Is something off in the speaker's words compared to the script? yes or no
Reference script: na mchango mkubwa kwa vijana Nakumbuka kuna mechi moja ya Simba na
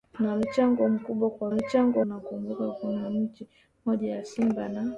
yes